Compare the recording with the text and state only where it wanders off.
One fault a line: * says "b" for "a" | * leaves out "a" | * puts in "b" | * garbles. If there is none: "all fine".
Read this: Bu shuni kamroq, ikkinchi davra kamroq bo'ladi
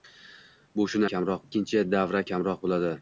all fine